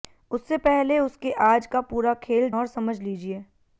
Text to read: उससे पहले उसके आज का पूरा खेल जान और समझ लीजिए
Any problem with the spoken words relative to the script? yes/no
yes